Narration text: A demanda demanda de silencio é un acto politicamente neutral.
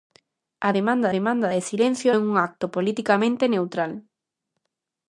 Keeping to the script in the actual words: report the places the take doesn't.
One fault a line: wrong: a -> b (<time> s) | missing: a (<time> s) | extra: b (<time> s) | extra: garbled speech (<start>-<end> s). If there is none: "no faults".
no faults